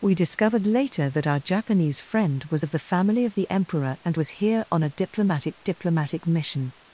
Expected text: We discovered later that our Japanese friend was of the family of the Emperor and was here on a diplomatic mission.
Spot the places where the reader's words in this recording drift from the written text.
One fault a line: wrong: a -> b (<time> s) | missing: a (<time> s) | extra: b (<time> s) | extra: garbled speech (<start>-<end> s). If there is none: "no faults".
extra: diplomatic (5.6 s)